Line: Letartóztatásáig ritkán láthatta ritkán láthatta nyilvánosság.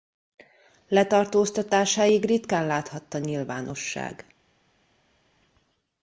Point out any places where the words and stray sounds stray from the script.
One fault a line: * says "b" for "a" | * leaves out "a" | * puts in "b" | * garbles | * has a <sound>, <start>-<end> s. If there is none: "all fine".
* leaves out "ritkán láthatta"